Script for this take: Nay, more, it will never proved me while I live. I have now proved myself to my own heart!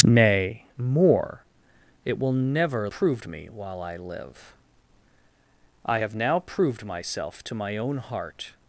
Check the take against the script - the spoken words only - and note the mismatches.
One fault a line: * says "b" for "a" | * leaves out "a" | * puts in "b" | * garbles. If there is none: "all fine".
all fine